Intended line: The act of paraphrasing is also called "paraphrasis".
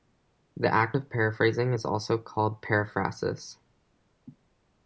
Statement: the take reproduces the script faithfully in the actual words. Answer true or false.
true